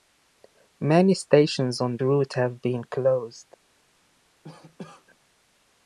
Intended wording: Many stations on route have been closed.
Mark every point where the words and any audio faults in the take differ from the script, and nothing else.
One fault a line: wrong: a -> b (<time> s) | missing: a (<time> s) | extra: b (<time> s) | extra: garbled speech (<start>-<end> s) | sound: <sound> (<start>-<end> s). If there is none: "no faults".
sound: cough (4.4-5.1 s)